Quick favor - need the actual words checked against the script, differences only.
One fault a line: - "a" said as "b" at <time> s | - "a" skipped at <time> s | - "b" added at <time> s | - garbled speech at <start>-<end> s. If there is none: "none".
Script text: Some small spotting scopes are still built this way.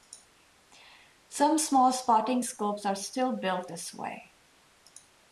none